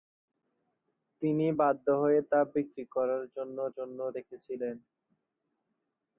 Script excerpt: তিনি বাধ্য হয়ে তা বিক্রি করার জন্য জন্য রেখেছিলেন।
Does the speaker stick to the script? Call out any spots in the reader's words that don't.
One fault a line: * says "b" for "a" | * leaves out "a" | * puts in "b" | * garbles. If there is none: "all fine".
all fine